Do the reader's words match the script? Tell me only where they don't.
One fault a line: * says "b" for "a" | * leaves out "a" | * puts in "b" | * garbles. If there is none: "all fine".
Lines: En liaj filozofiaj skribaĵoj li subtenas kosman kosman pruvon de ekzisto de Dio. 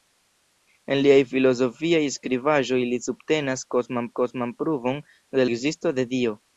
all fine